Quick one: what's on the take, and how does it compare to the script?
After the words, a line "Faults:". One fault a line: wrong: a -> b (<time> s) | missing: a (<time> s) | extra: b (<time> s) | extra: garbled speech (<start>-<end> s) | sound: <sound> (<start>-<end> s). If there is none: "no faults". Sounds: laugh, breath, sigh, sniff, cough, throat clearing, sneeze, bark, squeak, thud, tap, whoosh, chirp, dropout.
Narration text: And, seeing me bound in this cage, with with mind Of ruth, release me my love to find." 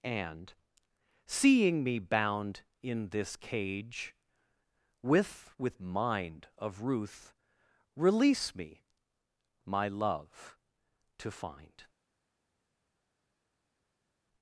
And, seeing me bound in this cage, with with mind Of ruth, release me my love to find."
Faults:
no faults